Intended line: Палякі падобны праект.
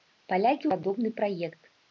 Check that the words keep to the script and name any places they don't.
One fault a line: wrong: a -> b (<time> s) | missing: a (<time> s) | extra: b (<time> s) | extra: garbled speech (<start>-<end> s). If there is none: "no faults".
no faults